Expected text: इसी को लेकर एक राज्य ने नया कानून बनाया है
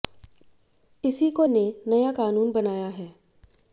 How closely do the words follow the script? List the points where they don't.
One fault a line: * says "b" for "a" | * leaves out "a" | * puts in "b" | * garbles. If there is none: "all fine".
* leaves out "लेकर एक राज्य"